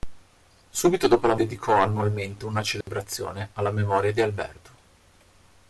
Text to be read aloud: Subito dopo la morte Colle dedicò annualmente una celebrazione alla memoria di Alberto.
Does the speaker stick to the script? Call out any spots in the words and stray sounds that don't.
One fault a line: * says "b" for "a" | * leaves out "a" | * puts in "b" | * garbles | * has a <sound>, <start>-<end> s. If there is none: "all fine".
* leaves out "morte Colle"
* has a dropout, 2.8-2.9 s